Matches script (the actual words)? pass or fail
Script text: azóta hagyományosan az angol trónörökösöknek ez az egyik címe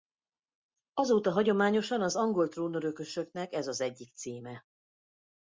pass